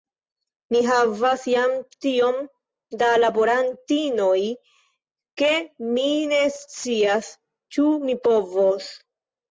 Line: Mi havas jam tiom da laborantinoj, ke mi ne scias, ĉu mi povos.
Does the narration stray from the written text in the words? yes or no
no